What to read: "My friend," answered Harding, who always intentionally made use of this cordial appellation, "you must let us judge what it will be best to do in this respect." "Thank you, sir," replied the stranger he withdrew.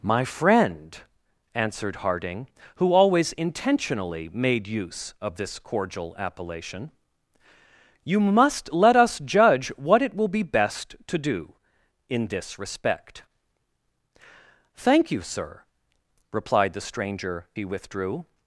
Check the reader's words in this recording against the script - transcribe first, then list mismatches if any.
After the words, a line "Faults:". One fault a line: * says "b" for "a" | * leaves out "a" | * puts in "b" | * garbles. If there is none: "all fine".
"My friend," answered Harding, who always intentionally made use of this cordial appellation, "you must let us judge what it will be best to do in this respect." "Thank you, sir," replied the stranger he withdrew.
Faults:
all fine